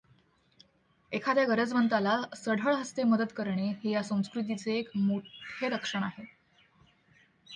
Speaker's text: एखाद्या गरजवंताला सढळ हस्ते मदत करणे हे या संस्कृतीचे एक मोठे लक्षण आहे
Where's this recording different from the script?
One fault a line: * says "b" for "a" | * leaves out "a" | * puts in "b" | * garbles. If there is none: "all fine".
all fine